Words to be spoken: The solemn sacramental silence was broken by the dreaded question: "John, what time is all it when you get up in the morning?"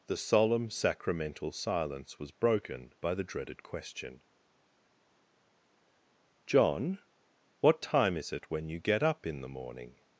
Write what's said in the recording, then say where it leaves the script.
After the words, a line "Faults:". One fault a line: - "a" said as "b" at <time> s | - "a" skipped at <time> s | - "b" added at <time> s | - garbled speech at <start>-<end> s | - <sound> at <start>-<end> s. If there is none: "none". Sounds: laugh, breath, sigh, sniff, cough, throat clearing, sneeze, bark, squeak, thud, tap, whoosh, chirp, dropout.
The solemn sacramental silence was broken by the dreaded question: "John, what time is it when you get up in the morning?"
Faults:
- "all" skipped at 8.3 s